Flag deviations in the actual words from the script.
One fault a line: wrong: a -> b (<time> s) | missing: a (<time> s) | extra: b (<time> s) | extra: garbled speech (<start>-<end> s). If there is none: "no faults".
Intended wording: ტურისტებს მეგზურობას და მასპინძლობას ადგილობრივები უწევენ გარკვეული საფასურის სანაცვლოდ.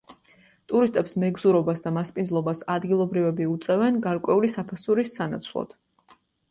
no faults